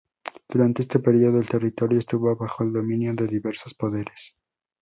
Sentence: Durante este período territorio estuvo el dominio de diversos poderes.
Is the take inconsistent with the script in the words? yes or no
yes